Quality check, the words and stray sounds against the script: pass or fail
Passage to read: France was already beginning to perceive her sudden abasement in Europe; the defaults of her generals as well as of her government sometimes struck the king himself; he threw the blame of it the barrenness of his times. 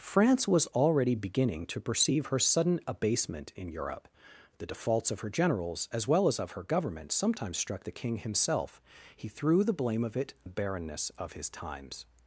pass